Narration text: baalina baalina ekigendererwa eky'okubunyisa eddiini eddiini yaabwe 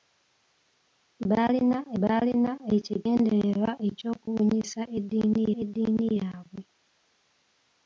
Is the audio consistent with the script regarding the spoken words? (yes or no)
yes